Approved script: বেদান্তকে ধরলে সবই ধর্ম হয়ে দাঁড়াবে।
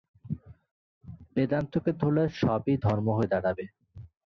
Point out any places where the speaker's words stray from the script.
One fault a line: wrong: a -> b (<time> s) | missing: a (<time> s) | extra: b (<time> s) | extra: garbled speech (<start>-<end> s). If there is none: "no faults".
no faults